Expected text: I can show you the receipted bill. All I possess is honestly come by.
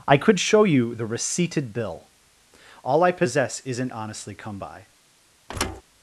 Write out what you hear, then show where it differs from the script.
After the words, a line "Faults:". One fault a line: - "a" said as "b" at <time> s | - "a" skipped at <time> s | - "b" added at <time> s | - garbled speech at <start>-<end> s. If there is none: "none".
I could show you the receipted bill. All I possess isn't honestly come by.
Faults:
- "can" said as "could" at 0.2 s
- "is" said as "isn't" at 3.6 s